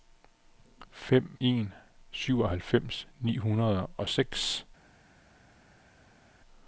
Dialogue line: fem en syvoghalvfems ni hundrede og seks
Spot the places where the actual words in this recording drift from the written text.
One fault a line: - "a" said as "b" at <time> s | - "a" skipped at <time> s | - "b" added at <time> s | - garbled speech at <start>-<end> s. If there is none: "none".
none